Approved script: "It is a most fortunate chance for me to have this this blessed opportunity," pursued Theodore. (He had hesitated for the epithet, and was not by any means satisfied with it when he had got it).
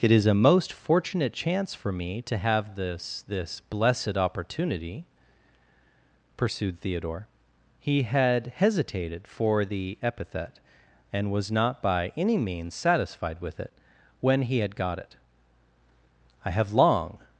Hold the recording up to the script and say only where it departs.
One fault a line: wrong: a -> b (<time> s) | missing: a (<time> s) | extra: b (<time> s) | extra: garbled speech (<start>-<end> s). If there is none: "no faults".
extra: I have long (16.4 s)